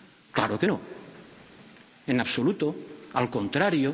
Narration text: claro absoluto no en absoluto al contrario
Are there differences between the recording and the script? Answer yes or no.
yes